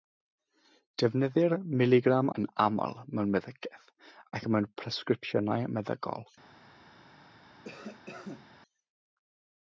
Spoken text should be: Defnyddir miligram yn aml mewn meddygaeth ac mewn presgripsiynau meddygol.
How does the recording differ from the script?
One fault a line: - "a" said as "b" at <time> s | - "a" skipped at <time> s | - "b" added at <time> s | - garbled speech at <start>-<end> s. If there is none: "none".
none